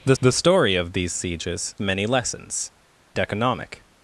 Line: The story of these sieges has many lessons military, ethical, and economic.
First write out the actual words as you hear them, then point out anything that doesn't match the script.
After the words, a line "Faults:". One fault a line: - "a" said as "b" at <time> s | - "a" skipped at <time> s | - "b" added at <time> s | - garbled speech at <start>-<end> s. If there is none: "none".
The the story of these sieges many lessons economic.
Faults:
- "the" added at 0.2 s
- "has" skipped at 1.7 s
- "military ethical and" skipped at 2.7 s